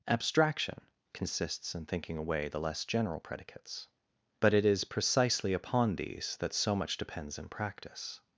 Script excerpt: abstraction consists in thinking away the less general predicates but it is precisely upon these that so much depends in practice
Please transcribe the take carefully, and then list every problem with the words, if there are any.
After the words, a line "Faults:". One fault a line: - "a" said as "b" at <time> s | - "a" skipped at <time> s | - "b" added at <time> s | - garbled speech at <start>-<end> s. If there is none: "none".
abstraction consists in thinking away the less general predicates but it is precisely upon these that so much depends in practice
Faults:
none